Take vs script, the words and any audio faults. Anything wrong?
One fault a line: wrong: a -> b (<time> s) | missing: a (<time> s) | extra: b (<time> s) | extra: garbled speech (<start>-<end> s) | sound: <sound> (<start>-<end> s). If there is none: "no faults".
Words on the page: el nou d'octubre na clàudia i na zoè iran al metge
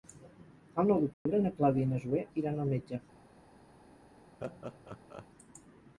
sound: dropout (1.1-1.3 s)
sound: laugh (4.4-5.3 s)